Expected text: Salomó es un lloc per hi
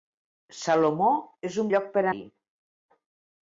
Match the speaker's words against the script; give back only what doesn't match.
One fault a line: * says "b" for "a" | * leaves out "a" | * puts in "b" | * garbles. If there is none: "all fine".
all fine